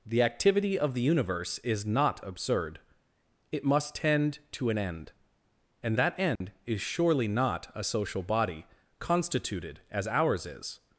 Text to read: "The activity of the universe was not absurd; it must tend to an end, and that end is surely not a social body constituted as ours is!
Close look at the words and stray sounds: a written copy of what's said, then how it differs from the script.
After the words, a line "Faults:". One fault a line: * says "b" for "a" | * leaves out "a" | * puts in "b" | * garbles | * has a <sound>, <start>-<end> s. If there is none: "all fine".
"The activity of the universe is not absurd; it must tend to an end, and that end is surely not a social body constituted as ours is!
Faults:
* says "is" for "was"
* has a dropout, 6.4-6.4 s